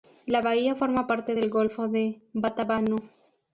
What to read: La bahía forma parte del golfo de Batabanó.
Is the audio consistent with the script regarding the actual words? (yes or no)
yes